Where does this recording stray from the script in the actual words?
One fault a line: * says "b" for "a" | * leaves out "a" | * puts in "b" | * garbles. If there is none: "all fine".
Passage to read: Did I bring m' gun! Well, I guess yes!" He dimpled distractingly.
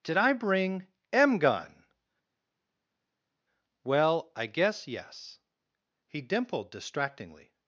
all fine